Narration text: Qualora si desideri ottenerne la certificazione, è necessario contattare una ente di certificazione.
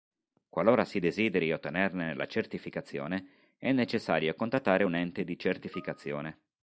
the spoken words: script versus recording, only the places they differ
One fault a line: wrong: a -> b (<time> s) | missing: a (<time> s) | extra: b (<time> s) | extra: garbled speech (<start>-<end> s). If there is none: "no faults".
wrong: una -> un (4.8 s)